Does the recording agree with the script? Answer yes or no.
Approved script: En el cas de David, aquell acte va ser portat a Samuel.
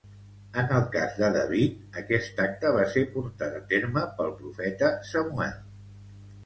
no